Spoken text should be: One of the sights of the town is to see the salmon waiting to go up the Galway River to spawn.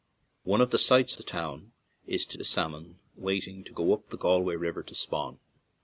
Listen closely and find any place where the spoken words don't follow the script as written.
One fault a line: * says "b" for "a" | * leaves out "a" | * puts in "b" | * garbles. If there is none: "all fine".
* leaves out "of"
* leaves out "see"